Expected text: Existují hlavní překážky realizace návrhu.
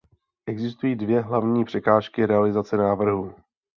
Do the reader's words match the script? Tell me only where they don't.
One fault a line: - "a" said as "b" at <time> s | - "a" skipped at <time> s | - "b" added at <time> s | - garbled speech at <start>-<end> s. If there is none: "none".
- "dvě" added at 0.9 s